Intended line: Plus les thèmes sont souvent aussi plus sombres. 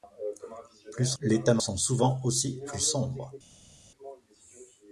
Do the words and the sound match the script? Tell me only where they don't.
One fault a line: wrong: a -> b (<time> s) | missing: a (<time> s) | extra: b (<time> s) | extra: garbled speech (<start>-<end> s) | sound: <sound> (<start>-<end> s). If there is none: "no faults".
no faults